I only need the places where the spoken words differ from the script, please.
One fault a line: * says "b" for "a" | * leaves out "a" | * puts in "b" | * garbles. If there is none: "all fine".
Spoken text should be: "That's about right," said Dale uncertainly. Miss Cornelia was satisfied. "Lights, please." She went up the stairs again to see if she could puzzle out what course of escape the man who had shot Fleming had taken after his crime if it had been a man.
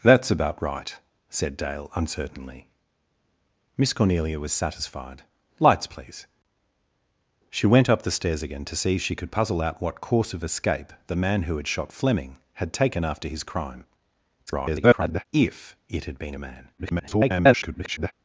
* garbles
* garbles